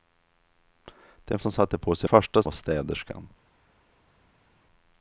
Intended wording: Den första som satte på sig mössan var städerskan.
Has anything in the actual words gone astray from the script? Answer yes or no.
yes